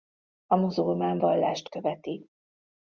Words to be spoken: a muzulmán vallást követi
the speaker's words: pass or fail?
pass